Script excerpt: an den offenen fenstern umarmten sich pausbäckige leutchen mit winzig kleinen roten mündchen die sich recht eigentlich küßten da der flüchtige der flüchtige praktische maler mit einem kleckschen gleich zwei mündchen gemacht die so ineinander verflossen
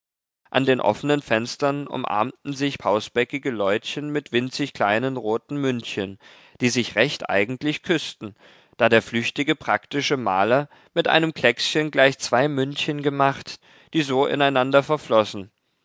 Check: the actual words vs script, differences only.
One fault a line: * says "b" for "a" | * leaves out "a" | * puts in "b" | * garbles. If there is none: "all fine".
* leaves out "der flüchtige"